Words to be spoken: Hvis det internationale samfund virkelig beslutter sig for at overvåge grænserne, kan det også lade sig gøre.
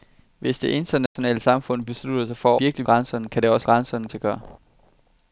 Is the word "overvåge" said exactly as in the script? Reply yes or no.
no